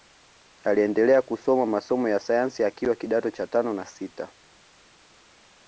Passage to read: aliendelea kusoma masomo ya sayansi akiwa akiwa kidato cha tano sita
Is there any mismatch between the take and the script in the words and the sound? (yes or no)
yes